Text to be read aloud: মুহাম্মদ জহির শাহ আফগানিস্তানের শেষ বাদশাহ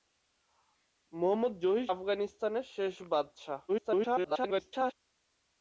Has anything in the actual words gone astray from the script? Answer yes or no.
yes